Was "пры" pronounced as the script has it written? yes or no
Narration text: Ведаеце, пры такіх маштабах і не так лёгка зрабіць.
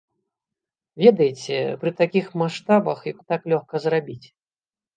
yes